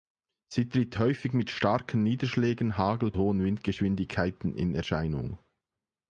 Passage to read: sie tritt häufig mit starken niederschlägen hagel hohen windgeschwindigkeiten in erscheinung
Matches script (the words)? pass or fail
pass